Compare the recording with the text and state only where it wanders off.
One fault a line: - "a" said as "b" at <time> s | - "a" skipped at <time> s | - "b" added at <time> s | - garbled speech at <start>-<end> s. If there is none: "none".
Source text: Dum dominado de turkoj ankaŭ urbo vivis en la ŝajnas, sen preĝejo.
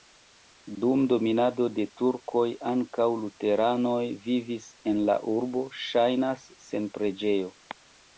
- "urbo" said as "luteranoj" at 3.2 s
- "urbo" added at 5.3 s